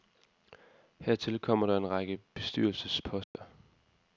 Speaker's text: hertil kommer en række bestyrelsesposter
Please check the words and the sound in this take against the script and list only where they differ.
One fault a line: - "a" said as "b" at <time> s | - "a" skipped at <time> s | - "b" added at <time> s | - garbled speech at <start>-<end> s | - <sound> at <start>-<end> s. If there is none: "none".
- "der" added at 1.7 s
- dropout at 3.2-3.3 s